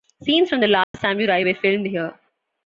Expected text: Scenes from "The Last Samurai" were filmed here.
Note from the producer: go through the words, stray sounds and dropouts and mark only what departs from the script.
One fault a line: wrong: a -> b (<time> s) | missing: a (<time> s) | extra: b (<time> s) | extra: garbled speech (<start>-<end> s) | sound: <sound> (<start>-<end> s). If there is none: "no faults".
sound: dropout (0.8-0.9 s)